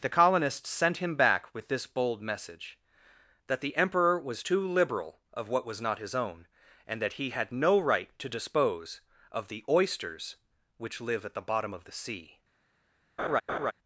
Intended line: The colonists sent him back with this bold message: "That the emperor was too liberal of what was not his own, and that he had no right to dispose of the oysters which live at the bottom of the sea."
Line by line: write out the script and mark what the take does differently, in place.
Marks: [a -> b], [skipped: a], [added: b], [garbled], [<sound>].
The colonists sent him back with this bold message: "That the emperor was too liberal of what was not his own, and that he had no right to dispose of the oysters which live at the bottom of the sea." [laugh]